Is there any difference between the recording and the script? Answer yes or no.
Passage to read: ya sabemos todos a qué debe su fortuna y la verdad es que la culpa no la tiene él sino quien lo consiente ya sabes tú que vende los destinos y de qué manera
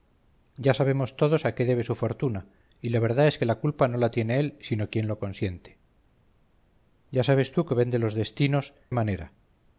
yes